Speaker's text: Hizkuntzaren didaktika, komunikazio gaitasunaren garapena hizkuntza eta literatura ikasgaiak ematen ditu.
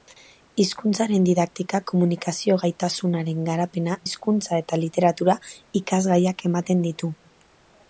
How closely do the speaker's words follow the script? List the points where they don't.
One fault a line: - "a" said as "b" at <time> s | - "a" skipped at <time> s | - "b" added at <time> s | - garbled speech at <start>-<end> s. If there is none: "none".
none